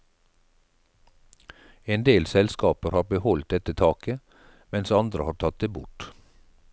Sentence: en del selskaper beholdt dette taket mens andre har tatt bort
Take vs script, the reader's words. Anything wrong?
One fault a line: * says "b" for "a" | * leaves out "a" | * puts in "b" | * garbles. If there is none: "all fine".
* puts in "har"
* puts in "det"